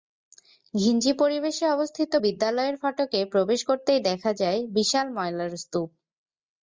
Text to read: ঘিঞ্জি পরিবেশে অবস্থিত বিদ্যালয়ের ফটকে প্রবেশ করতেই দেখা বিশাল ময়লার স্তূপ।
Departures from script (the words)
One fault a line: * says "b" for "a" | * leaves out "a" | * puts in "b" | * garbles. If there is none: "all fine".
* puts in "যায়"